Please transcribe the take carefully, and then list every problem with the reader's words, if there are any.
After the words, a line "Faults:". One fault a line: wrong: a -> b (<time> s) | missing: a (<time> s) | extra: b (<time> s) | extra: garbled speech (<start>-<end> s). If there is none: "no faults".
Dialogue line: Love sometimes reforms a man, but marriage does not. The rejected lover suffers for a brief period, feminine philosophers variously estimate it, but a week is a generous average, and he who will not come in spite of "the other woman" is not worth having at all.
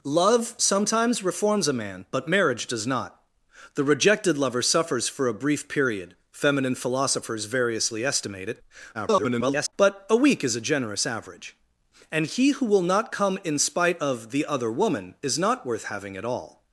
Love sometimes reforms a man, but marriage does not. The rejected lover suffers for a brief period, feminine philosophers variously estimate it, [garbled] but a week is a generous average, and he who will not come in spite of "the other woman" is not worth having at all.
Faults:
extra: garbled speech (8.9-9.7 s)